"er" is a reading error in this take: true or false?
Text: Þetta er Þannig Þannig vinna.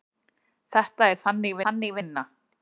false